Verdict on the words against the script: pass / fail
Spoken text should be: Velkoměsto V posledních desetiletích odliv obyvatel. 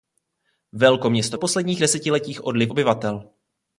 pass